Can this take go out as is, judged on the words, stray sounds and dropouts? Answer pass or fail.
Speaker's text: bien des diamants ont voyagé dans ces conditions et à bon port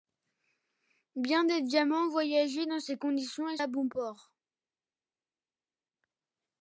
pass